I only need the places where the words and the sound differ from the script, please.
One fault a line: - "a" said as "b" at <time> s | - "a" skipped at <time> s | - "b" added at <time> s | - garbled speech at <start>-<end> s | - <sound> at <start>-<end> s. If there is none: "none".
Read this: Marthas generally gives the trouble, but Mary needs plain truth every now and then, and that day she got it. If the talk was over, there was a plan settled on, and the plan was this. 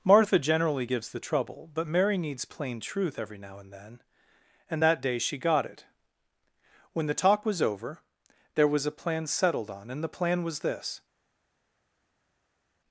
- "Marthas" said as "Martha" at 0.0 s
- "If" said as "When" at 6.9 s